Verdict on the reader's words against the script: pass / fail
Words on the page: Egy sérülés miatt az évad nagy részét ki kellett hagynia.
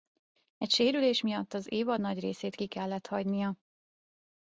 pass